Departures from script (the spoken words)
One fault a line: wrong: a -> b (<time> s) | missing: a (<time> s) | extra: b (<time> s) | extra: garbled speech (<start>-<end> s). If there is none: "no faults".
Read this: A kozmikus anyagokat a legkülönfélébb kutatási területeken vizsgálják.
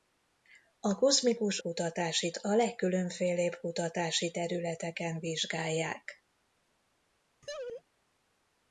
wrong: anyagokat -> kutatási (1.6 s)